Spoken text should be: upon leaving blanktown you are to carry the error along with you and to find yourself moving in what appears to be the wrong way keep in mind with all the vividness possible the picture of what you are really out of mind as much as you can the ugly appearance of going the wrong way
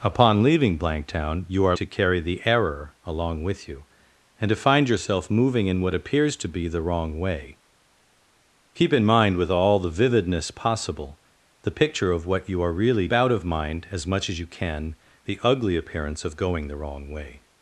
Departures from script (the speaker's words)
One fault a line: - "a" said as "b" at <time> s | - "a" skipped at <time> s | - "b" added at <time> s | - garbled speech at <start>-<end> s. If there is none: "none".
none